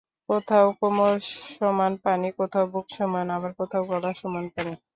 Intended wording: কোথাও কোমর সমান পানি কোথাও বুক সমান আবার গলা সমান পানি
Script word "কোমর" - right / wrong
right